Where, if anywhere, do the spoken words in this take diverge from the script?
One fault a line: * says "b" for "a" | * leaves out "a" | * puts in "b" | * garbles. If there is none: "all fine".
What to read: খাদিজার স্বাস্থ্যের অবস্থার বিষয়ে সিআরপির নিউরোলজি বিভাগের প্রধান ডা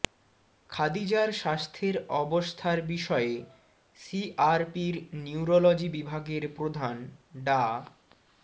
all fine